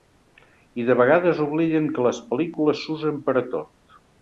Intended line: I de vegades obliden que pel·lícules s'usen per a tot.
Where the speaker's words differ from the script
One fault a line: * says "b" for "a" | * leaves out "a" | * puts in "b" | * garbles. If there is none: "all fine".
* puts in "les"